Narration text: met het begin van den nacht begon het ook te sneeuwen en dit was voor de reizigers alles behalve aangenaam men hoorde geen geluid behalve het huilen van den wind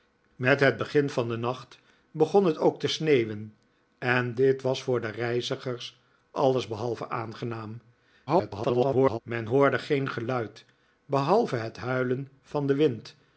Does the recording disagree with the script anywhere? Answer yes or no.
yes